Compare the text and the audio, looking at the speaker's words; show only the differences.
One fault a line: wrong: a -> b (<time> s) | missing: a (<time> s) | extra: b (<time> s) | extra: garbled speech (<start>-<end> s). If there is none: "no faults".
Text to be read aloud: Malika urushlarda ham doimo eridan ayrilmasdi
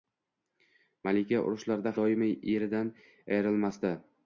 missing: ham (1.9 s)